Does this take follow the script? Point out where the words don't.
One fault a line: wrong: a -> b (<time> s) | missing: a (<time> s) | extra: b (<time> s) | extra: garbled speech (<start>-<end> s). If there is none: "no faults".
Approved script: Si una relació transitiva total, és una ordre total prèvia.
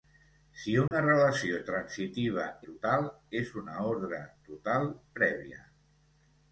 no faults